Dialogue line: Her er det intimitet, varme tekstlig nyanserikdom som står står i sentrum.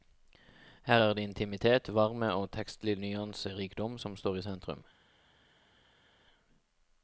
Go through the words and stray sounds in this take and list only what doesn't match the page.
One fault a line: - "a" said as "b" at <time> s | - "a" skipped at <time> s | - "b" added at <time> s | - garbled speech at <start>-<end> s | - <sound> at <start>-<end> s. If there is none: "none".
- "og" added at 2.3 s
- "står" skipped at 4.4 s